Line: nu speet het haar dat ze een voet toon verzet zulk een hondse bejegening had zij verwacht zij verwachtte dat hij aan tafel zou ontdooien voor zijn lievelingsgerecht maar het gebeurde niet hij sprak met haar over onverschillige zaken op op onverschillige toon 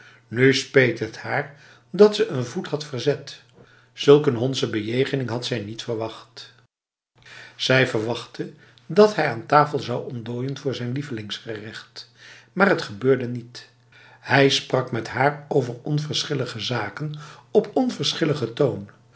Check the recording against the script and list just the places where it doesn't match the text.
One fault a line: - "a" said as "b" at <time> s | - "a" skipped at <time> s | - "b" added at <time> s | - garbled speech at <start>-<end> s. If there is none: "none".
- "toon" said as "had" at 2.7 s
- "niet" added at 5.6 s
- "op" skipped at 17.7 s